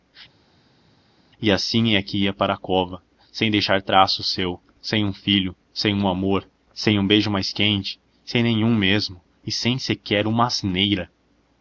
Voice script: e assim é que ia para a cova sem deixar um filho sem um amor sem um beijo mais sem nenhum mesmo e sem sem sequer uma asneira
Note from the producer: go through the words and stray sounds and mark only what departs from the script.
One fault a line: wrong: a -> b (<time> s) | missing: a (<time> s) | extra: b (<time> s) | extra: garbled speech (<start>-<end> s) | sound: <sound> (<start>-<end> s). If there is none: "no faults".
extra: traço seu sem (3.8 s)
extra: quente (7.5 s)
missing: sem (9.8 s)